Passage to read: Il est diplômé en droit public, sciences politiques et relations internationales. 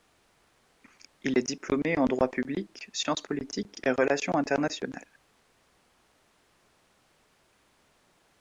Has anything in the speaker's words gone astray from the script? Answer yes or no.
no